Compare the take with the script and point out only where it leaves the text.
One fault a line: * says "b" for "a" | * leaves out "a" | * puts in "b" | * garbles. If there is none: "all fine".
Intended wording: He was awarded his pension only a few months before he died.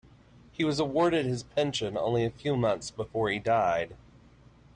all fine